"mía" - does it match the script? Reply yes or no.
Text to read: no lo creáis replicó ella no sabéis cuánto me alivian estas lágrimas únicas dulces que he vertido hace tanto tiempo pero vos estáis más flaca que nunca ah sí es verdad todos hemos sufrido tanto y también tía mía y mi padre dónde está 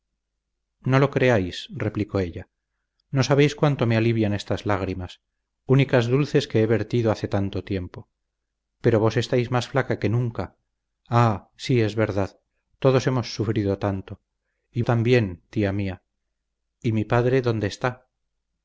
yes